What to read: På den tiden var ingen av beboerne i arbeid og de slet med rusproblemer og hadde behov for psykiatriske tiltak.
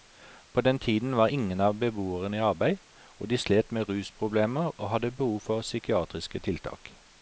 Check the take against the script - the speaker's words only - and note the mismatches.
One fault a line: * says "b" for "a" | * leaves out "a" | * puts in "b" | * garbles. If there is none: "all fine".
all fine